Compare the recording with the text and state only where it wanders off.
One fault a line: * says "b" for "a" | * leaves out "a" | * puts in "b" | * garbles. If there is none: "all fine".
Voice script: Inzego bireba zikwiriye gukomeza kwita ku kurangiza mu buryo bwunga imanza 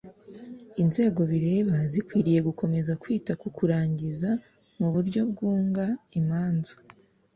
all fine